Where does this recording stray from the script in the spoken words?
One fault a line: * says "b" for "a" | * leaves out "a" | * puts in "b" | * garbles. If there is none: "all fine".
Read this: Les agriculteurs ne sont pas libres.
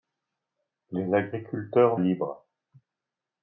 * leaves out "ne sont pas"